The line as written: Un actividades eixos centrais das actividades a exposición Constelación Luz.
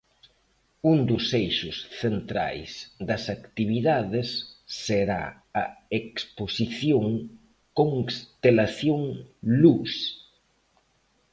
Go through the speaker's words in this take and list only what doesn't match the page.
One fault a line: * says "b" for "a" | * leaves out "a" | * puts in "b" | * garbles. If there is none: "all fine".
* says "dos" for "actividades"
* puts in "será"